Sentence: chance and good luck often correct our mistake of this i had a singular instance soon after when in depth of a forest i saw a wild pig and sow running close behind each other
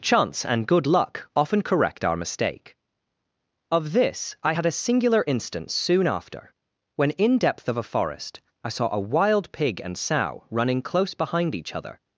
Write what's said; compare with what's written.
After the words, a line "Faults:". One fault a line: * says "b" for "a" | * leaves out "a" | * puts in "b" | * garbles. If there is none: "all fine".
chance and good luck often correct our mistake of this i had a singular instance soon after when in depth of a forest i saw a wild pig and sow running close behind each other
Faults:
all fine